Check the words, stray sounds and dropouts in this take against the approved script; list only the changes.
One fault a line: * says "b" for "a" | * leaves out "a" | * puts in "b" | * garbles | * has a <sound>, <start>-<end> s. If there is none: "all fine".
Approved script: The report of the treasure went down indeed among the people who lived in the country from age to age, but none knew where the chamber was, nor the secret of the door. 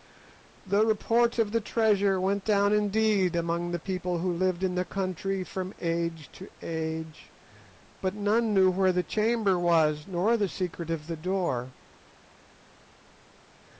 all fine